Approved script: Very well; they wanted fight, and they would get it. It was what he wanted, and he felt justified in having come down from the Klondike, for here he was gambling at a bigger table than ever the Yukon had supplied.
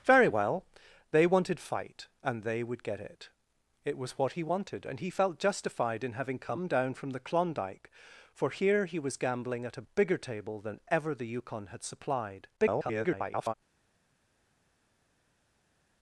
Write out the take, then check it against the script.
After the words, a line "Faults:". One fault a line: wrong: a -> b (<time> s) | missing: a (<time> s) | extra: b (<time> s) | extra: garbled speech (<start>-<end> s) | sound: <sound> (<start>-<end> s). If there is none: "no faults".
Very well; they wanted fight, and they would get it. It was what he wanted, and he felt justified in having come down from the Klondike, for here he was gambling at a bigger table than ever the Yukon had supplied. [garbled]
Faults:
extra: garbled speech (12.6-13.5 s)